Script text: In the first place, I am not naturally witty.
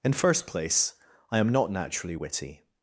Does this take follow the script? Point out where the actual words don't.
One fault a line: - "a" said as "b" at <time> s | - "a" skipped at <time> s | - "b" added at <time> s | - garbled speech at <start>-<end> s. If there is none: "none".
- "the" skipped at 0.1 s